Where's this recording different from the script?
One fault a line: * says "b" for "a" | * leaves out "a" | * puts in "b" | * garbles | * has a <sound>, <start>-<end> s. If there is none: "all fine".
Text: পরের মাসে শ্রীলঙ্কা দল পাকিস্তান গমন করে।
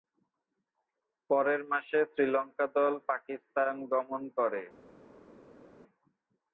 all fine